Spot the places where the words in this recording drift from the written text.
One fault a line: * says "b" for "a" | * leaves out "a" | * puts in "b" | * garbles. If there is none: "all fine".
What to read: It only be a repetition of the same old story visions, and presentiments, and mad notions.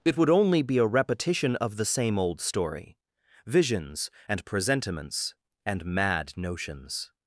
* puts in "would"